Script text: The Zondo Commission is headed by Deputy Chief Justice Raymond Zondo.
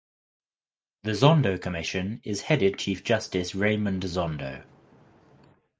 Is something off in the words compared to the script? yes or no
yes